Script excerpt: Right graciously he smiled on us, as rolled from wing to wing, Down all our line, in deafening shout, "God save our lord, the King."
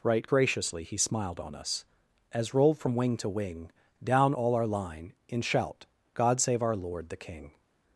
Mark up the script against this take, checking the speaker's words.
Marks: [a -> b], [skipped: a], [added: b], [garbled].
Right graciously he smiled on us, as rolled from wing to wing, Down all our line, in [skipped: deafening] shout, "God save our lord, the King."